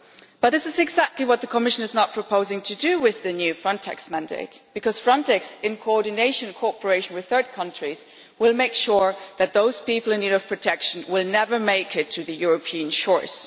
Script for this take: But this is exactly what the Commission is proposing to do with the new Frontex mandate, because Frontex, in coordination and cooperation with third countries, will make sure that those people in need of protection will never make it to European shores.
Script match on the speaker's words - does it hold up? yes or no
no